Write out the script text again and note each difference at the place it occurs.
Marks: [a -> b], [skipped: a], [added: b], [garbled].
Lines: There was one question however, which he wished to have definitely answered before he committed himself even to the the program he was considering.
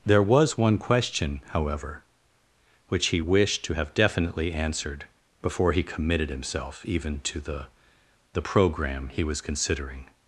There was one question however, which he wished to have definitely answered before he committed himself even to the the program he was considering.